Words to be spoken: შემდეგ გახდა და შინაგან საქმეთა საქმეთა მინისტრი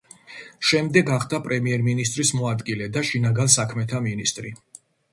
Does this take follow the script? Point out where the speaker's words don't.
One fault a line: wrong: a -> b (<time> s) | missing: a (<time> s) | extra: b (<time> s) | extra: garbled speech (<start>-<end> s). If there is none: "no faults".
extra: პრემიერ მინისტრის მოადგილე (1.5 s)
missing: საქმეთა (4.1 s)